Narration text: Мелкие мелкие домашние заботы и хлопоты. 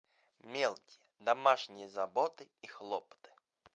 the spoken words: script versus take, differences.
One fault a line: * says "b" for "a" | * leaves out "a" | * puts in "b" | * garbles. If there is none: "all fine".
* leaves out "мелкие"